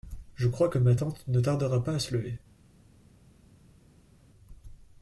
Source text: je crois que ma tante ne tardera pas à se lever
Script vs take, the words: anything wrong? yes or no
no